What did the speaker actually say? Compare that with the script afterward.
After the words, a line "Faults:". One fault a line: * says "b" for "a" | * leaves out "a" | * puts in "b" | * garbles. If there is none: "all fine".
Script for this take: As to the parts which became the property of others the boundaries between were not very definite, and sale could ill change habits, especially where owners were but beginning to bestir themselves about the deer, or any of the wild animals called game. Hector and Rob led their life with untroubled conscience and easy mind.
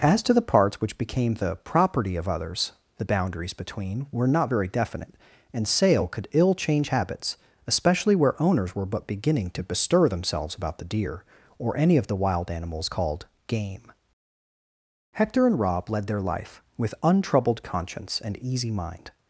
As to the parts which became the property of others the boundaries between were not very definite, and sale could ill change habits, especially where owners were but beginning to bestir themselves about the deer, or any of the wild animals called game. Hector and Rob led their life with untroubled conscience and easy mind.
Faults:
all fine